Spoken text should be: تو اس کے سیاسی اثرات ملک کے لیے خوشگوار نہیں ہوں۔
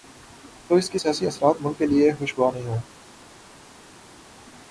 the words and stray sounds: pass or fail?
pass